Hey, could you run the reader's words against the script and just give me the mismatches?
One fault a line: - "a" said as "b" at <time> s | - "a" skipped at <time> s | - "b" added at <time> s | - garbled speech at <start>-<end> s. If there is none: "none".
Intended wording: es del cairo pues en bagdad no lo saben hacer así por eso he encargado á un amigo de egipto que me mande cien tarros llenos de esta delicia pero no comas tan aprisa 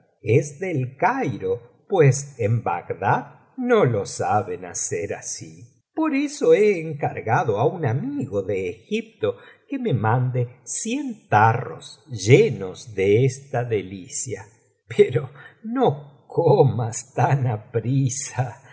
none